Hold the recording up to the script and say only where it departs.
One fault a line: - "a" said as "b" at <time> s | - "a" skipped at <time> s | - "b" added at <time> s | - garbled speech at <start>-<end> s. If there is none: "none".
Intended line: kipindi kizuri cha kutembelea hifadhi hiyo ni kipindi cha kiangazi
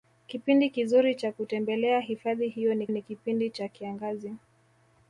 - "ni" added at 2.9 s